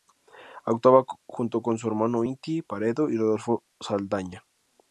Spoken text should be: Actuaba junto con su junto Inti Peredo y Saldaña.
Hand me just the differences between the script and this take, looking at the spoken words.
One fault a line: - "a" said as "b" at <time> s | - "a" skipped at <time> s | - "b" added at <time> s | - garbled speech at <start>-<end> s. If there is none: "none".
- "junto" said as "hermano" at 1.9 s
- "Rodolfo" added at 3.2 s